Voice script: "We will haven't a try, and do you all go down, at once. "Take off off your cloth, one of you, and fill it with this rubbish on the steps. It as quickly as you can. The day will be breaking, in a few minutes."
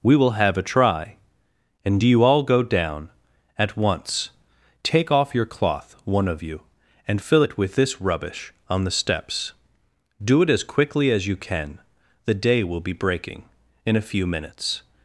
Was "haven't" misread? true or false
true